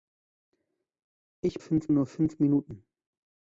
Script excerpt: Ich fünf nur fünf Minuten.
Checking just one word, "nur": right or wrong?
right